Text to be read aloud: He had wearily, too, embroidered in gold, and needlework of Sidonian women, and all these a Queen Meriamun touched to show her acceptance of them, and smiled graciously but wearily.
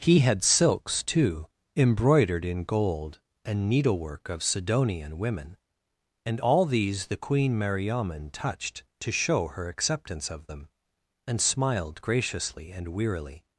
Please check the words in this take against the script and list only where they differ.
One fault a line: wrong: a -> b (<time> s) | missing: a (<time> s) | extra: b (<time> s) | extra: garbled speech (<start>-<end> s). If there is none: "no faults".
wrong: wearily -> silks (0.4 s)
wrong: a -> the (7.1 s)
wrong: but -> and (12.7 s)